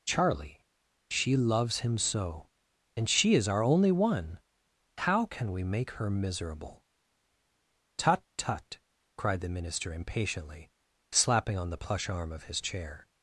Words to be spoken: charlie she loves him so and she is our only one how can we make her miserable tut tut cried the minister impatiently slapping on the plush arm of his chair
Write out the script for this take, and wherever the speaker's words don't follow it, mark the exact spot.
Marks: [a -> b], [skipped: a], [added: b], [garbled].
charlie she loves him so and she is our only one how can we make her miserable tut tut cried the minister impatiently slapping on the plush arm of his chair